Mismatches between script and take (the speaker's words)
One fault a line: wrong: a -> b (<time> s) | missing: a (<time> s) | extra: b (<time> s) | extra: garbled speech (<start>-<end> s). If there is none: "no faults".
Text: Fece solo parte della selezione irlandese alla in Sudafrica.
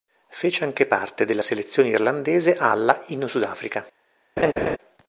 wrong: solo -> anche (0.6 s)